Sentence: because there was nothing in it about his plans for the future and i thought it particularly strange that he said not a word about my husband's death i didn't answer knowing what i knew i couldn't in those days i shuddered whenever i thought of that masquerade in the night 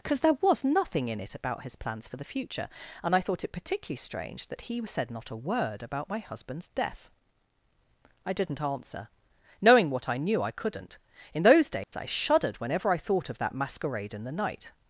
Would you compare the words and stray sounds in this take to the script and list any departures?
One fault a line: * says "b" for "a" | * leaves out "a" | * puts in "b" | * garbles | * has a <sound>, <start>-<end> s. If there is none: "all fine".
* has a dropout, 11.8-11.9 s